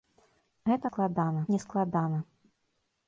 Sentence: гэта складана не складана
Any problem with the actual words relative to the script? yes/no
no